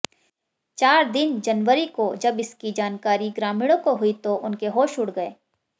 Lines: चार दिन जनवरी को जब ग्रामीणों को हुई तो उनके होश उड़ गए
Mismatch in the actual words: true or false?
true